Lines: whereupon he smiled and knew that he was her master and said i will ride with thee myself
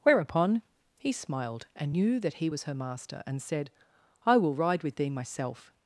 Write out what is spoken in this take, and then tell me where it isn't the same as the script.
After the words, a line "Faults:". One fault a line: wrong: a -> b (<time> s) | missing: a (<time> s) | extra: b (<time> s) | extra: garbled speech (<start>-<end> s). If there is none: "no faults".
whereupon he smiled and knew that he was her master and said i will ride with thee myself
Faults:
no faults